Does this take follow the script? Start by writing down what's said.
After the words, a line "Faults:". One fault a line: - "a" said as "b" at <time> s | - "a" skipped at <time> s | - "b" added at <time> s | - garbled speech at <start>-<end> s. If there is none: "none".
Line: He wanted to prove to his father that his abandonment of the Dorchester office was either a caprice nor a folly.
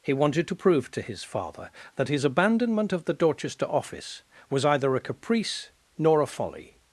He wanted to prove to his father that his abandonment of the Dorchester office was either a caprice nor a folly.
Faults:
none